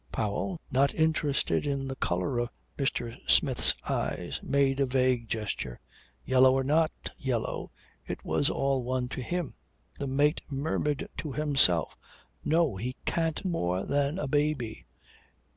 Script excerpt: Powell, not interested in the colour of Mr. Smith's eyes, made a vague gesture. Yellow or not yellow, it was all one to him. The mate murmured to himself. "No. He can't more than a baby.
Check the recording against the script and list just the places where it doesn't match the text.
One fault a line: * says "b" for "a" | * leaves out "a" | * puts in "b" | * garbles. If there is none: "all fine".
all fine